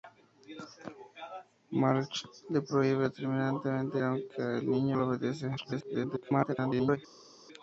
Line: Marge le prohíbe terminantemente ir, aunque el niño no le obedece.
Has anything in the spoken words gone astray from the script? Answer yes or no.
yes